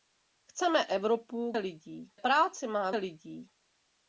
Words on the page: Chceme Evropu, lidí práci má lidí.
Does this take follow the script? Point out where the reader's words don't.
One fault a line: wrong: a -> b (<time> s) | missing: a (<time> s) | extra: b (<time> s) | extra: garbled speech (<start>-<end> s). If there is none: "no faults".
no faults